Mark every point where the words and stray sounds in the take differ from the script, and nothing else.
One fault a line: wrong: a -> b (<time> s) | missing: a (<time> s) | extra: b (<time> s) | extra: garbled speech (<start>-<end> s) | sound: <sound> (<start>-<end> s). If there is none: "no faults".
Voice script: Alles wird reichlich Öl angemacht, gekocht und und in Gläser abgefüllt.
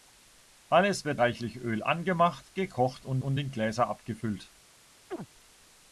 sound: chirp (5.1-5.3 s)